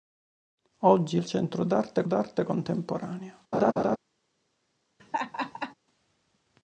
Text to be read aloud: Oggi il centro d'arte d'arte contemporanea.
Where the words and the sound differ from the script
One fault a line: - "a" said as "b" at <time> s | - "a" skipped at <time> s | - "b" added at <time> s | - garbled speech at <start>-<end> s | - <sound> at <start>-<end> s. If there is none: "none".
- laugh at 3.5-4.0 s
- laugh at 5.0-5.7 s